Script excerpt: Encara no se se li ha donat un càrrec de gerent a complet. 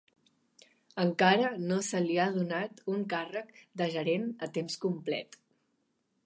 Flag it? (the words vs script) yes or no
yes